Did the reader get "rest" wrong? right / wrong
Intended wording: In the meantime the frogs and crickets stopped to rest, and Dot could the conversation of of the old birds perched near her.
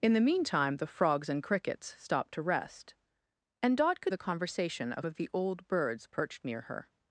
right